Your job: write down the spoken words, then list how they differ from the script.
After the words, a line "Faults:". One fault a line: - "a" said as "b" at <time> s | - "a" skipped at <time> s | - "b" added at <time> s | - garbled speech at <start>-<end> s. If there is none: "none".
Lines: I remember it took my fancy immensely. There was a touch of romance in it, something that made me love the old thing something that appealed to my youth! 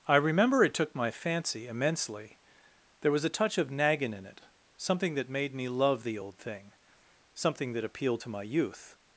I remember it took my fancy immensely. There was a touch of naggin in it, something that made me love the old thing something that appealed to my youth!
Faults:
- "romance" said as "naggin" at 3.7 s